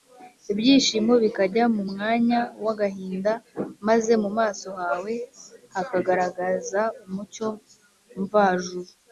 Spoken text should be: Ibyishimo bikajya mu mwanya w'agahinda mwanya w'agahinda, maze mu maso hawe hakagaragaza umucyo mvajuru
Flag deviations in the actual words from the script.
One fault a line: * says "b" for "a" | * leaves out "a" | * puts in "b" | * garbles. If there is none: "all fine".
* leaves out "mwanya w'agahinda"